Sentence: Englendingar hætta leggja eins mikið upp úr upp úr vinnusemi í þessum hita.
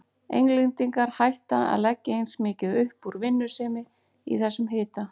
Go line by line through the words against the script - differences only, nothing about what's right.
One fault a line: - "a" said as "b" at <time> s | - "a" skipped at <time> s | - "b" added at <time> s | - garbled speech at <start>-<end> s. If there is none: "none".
- "að" added at 1.7 s
- "upp úr" skipped at 3.2 s